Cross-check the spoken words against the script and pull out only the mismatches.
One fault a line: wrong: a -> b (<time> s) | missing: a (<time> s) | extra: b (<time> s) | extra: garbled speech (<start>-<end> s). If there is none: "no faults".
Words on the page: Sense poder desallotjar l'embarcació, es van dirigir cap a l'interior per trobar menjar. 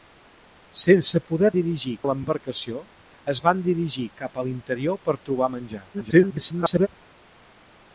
wrong: desallotjar -> dirigir (1.6 s)
extra: garbled speech (5.9-6.9 s)